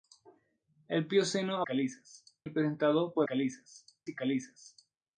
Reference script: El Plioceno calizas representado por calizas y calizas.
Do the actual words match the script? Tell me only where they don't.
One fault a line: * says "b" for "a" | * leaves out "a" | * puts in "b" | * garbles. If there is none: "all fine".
all fine